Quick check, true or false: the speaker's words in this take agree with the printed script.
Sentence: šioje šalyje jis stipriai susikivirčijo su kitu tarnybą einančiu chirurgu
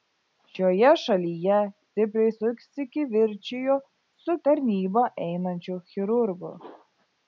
false